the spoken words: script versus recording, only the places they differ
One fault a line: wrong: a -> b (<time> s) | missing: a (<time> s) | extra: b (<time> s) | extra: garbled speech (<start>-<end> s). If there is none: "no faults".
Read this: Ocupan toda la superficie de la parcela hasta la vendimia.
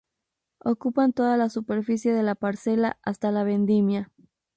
no faults